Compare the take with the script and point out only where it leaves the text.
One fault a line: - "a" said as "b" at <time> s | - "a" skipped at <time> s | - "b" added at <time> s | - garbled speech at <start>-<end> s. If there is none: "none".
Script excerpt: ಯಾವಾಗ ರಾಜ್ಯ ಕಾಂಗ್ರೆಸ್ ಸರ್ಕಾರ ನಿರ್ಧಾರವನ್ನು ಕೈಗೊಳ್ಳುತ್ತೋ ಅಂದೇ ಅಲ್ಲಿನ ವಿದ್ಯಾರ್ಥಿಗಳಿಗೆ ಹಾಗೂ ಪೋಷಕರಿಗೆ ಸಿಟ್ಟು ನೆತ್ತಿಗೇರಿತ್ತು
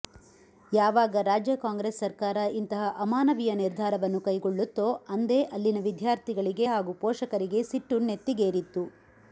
- "ಇಂತಹ ಅಮಾನವೀಯ" added at 2.6 s